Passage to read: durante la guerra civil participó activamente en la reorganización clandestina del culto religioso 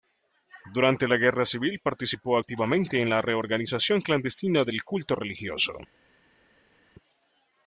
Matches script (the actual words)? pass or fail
pass